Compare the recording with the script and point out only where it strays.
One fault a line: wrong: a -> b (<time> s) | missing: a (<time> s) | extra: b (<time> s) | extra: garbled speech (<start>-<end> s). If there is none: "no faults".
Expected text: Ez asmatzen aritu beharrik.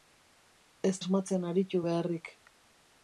no faults